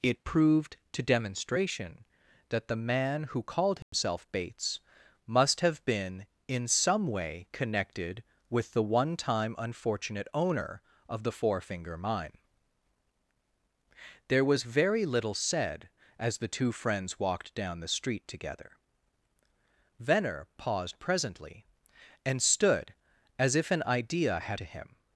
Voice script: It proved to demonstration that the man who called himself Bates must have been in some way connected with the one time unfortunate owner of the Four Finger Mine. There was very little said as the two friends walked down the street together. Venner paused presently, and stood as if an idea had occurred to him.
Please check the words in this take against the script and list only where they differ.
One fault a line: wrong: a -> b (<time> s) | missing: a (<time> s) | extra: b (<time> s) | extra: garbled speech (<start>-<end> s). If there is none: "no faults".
missing: occurred (24.6 s)